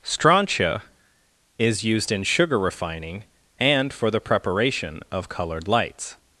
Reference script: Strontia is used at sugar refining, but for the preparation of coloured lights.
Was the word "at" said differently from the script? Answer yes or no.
yes